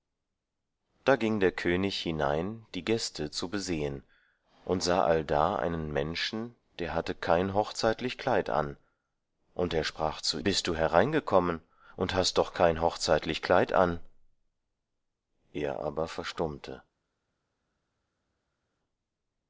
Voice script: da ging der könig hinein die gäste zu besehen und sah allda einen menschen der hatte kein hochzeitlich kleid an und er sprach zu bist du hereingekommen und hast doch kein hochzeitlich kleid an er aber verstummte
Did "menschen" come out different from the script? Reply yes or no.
no